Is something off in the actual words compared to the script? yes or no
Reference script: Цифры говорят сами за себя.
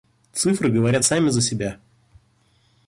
no